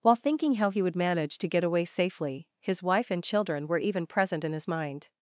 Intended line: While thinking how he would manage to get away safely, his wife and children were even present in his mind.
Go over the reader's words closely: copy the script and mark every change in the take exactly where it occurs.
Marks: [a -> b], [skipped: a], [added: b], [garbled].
While thinking how he would manage to get away safely, his wife and children were even present in his mind.